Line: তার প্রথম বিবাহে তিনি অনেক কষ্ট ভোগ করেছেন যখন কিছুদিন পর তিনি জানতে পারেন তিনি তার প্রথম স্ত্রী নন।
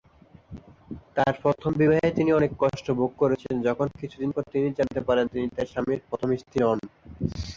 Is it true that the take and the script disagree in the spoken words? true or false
true